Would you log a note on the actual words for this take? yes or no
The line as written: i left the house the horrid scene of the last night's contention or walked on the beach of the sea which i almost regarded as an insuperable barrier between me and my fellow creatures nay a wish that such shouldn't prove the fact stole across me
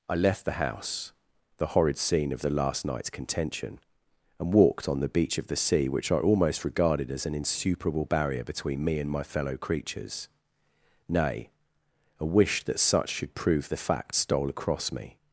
yes